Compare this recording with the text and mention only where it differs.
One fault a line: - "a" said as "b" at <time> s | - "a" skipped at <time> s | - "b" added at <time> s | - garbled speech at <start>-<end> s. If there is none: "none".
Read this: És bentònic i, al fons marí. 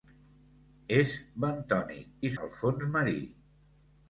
none